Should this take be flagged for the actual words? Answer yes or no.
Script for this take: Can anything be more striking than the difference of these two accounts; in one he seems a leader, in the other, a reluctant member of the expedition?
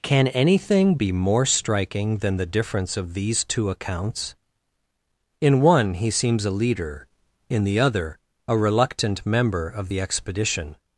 no